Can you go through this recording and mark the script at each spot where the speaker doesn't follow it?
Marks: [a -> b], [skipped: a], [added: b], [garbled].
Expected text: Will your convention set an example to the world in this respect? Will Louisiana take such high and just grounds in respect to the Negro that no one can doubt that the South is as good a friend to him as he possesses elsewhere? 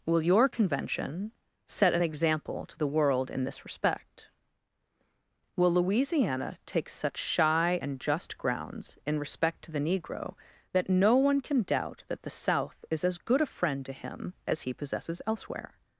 Will your convention set an example to the world in this respect? Will Louisiana take such [high -> shy] and just grounds in respect to the Negro that no one can doubt that the South is as good a friend to him as he possesses elsewhere?